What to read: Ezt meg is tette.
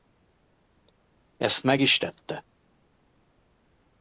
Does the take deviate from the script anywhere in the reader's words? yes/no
no